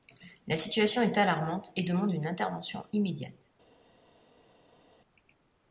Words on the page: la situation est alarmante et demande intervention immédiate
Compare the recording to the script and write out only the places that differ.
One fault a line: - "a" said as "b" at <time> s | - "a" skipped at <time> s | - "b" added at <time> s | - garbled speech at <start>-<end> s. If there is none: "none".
- "une" added at 2.1 s